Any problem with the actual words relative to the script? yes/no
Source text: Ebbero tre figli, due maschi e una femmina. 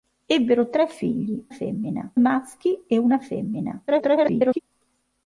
yes